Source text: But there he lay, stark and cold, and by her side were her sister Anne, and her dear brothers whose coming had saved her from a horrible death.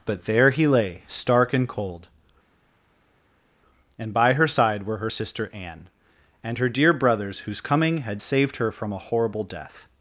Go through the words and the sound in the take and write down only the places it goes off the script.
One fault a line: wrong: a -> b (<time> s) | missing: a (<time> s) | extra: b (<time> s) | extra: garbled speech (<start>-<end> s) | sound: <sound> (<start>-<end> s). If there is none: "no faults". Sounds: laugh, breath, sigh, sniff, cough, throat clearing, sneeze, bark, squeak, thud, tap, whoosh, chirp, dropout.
no faults